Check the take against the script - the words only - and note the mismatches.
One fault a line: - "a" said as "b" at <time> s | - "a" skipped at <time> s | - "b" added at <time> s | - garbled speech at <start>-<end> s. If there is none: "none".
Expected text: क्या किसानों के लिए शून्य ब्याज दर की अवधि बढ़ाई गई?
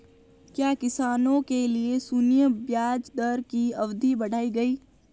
none